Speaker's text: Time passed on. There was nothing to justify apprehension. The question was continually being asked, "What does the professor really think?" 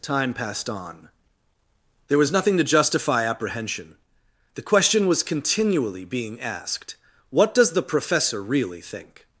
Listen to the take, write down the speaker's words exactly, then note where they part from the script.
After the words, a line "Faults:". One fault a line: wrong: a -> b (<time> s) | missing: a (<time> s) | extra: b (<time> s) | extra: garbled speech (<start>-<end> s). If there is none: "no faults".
Time passed on. There was nothing to justify apprehension. The question was continually being asked, "What does the professor really think?"
Faults:
no faults